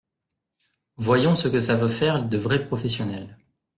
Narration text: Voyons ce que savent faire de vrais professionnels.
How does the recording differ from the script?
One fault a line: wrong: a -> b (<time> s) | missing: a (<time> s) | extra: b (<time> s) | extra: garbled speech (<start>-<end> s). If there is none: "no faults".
no faults